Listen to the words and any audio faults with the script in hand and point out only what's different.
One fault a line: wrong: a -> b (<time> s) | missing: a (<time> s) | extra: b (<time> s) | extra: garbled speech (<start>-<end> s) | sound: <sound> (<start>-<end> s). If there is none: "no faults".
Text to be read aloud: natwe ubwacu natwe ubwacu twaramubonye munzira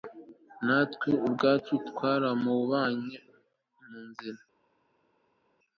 missing: natwe ubwacu (1.7 s)